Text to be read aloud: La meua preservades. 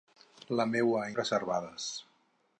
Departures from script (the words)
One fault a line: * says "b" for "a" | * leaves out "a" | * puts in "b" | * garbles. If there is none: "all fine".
all fine